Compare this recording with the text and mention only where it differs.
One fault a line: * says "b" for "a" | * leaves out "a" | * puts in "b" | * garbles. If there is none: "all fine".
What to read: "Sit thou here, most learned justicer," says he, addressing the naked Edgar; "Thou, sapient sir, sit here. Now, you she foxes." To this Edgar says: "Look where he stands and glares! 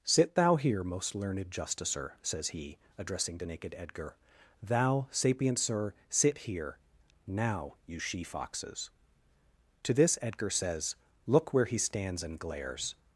all fine